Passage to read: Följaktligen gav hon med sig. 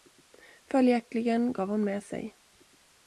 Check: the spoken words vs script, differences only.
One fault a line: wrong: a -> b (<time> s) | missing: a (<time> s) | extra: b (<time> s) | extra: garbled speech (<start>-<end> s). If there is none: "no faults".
no faults